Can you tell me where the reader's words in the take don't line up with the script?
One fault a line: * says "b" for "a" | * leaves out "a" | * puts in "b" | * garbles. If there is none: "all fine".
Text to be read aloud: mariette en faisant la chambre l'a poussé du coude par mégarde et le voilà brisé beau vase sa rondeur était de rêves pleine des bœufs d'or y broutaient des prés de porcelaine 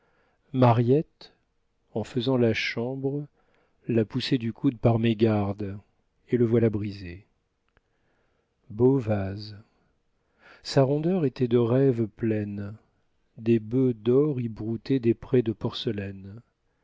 all fine